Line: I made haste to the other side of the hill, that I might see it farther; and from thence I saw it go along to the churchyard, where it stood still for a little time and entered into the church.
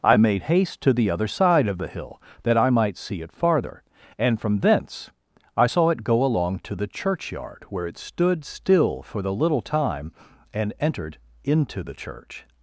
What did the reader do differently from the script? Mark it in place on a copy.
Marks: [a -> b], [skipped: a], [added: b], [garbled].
I made haste to the other side of the hill, that I might see it farther; and from thence I saw it go along to the churchyard, where it stood still for [a -> the] little time and entered into the church.